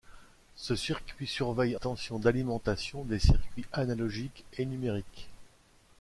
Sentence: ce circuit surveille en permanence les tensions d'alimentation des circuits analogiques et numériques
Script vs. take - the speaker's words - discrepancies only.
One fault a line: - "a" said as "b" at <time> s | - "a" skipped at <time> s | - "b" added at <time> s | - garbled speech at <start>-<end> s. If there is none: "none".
- "en permanence les" skipped at 1.8 s